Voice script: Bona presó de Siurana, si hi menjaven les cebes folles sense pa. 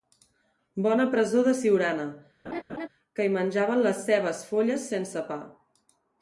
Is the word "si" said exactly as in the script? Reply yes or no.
no